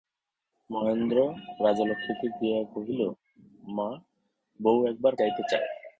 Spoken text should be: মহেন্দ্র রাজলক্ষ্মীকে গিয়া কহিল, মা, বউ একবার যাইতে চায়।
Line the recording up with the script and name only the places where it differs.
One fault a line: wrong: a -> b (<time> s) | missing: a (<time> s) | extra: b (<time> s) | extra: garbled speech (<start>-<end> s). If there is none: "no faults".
no faults